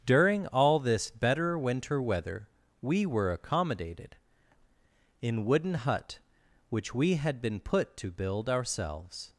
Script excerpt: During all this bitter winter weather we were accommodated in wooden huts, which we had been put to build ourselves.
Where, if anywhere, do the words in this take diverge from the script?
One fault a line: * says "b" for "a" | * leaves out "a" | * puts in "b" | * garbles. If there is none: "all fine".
* says "better" for "bitter"
* says "hut" for "huts"